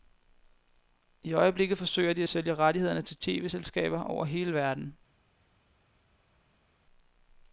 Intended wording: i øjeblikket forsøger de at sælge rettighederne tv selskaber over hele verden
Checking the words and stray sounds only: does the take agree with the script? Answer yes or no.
no